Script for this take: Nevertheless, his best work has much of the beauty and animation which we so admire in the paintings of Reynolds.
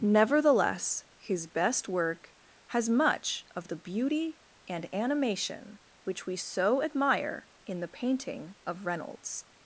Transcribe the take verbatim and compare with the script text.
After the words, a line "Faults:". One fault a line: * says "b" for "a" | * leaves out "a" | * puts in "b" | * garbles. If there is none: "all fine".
Nevertheless, his best work has much of the beauty and animation which we so admire in the painting of Reynolds.
Faults:
* says "painting" for "paintings"